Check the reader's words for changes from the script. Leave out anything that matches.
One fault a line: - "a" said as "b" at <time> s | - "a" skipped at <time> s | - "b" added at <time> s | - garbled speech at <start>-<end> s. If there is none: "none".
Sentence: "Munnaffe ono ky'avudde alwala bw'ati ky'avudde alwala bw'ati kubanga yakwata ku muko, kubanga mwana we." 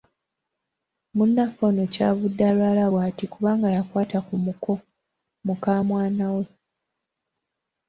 - "ky'avudde alwala bw'ati" skipped at 3.2 s
- "kubanga" said as "muka" at 5.5 s